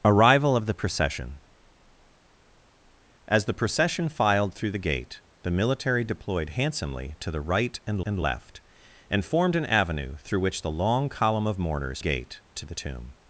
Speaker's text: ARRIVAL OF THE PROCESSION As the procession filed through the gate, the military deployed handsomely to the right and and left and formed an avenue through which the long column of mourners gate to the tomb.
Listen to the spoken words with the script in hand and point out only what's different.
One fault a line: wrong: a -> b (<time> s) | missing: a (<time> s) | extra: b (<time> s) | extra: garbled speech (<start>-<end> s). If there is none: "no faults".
no faults